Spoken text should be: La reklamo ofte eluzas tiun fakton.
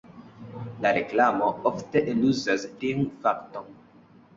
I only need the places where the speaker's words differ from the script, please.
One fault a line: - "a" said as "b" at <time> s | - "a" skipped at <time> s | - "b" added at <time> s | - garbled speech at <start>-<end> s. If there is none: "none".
none